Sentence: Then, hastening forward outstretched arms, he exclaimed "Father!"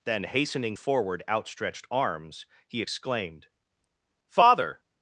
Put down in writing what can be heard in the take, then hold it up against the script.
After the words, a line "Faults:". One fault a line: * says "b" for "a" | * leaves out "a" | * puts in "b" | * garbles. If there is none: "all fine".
Then, hastening forward outstretched arms, he exclaimed "Father!"
Faults:
all fine